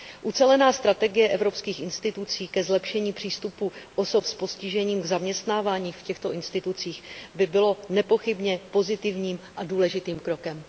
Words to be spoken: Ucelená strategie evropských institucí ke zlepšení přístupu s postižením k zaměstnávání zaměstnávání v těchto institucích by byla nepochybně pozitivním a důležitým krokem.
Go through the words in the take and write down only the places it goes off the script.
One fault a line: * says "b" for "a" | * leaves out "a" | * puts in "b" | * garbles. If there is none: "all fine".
* puts in "osob"
* leaves out "zaměstnávání"